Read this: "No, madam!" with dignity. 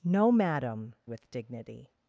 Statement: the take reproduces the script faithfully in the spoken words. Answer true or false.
true